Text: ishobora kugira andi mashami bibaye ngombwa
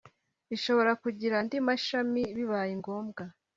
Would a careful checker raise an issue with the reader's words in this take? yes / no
no